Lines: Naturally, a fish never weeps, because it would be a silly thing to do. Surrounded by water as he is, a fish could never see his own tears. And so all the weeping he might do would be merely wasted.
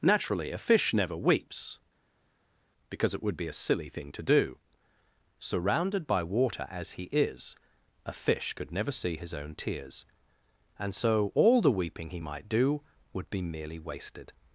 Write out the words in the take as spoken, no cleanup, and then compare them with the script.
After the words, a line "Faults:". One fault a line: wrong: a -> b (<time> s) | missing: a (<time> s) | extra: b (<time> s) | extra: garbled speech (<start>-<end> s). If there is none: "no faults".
Naturally, a fish never weeps, because it would be a silly thing to do. Surrounded by water as he is, a fish could never see his own tears. And so all the weeping he might do would be merely wasted.
Faults:
no faults